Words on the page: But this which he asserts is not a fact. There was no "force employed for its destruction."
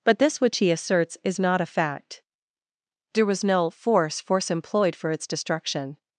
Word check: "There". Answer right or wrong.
right